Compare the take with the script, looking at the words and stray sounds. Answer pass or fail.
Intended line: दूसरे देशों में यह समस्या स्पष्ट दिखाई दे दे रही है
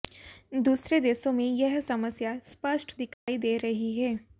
fail